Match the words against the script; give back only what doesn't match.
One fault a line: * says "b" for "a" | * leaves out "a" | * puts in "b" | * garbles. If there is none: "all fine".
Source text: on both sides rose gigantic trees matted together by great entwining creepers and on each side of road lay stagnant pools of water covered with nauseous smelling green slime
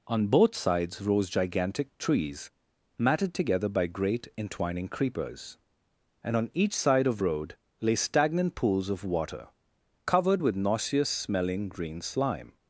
all fine